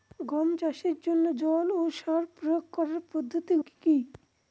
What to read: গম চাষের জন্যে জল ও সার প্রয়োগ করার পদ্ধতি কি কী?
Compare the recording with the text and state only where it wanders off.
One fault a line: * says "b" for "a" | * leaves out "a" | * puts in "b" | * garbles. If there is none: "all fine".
all fine